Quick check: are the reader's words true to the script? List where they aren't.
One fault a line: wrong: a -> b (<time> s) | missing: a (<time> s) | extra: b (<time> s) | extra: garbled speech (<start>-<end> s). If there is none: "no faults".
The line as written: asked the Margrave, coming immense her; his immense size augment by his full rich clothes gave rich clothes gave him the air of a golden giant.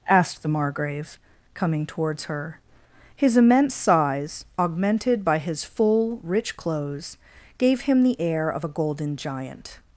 wrong: immense -> towards (1.9 s)
wrong: augment -> augmented (4.6 s)
missing: rich clothes gave (7.8 s)